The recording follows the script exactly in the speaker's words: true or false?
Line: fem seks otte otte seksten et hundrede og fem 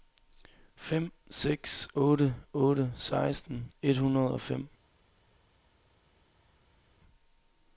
true